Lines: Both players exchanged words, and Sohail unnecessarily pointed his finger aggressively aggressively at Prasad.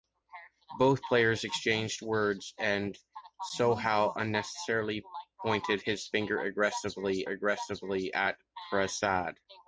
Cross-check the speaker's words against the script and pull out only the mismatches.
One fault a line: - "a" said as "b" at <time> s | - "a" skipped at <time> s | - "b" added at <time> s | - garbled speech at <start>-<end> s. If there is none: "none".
none